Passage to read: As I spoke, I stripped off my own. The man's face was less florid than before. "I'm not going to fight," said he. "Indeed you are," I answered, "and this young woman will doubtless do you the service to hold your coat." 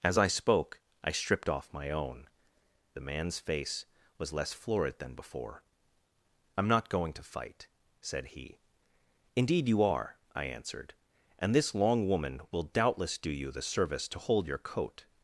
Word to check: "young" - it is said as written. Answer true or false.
false